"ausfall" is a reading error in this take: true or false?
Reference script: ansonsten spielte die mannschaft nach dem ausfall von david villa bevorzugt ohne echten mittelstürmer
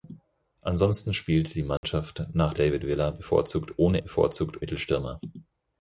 true